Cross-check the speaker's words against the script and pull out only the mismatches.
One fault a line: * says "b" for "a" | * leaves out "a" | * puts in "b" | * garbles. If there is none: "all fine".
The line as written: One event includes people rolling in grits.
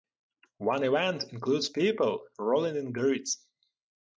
all fine